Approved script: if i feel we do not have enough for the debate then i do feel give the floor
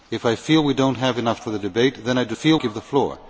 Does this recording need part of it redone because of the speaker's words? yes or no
no